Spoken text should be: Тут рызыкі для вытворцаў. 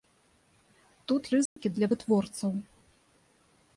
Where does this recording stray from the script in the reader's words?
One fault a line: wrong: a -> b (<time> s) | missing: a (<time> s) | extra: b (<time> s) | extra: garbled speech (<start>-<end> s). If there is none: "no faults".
no faults